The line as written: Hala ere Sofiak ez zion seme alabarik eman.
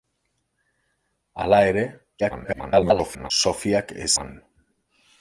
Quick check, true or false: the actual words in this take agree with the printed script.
false